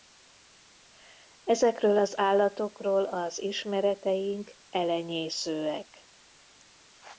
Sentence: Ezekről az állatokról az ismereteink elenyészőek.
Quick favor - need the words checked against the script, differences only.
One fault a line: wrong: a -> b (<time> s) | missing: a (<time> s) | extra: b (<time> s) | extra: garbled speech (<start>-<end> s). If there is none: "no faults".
no faults